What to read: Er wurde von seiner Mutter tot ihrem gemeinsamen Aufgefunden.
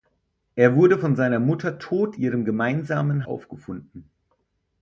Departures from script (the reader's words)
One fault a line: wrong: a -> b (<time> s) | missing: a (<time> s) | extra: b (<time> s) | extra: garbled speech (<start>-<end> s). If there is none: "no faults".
no faults